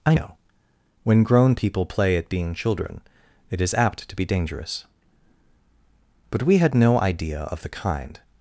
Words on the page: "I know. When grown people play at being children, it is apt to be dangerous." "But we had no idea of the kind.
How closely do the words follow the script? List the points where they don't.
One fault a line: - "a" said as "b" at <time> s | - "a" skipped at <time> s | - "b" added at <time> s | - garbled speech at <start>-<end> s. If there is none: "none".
none